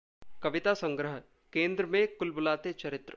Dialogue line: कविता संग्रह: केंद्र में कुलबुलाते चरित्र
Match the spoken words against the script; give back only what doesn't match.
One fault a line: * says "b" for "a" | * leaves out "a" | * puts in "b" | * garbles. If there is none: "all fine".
all fine